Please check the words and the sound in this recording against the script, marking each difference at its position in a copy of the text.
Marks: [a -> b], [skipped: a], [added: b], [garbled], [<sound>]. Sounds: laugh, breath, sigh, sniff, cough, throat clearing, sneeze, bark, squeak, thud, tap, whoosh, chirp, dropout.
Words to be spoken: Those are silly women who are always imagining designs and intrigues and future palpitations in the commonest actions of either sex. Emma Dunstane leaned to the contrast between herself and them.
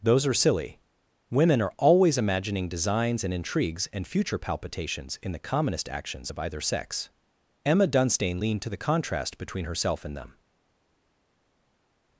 Those are silly women [skipped: who] are always imagining designs and intrigues and future palpitations in the commonest actions of either sex. Emma Dunstane leaned to the contrast between herself and them.